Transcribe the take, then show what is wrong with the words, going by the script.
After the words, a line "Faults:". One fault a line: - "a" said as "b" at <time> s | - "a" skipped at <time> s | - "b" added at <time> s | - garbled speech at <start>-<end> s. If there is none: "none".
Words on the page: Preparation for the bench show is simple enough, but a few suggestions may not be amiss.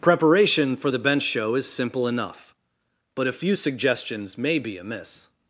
Preparation for the bench show is simple enough, but a few suggestions may be amiss.
Faults:
- "not" skipped at 4.6 s